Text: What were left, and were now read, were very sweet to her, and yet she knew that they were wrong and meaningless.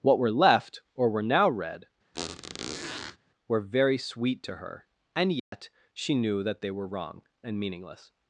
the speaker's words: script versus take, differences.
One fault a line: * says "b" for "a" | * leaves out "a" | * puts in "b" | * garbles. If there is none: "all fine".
* says "or" for "and"